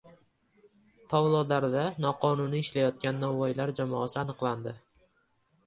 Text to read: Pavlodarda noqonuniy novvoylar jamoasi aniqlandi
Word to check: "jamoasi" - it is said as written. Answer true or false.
true